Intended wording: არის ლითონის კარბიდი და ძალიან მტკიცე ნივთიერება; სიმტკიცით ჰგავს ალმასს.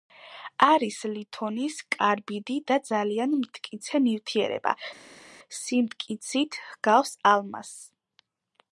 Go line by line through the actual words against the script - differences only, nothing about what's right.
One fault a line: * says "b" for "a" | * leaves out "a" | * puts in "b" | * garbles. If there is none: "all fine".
all fine